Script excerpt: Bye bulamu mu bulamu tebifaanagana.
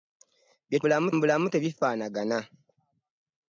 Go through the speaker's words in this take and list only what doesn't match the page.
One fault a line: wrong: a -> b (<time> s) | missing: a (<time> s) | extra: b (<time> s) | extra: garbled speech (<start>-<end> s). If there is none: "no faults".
no faults